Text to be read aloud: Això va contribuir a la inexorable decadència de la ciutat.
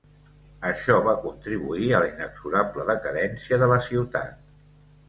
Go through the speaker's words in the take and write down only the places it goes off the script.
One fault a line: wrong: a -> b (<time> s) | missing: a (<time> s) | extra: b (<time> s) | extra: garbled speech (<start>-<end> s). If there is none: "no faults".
no faults